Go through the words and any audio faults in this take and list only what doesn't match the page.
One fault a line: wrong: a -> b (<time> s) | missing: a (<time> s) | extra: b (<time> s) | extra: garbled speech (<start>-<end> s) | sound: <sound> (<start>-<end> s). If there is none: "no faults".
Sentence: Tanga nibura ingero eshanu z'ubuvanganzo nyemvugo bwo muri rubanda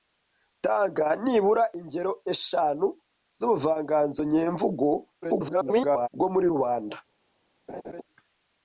extra: garbled speech (5.2-6.1 s)
sound: laugh (7.7-8.0 s)